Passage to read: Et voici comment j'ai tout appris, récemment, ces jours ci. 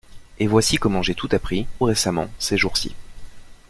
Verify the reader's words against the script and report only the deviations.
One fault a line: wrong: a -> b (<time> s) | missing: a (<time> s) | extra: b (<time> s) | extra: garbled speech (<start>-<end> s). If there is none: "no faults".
no faults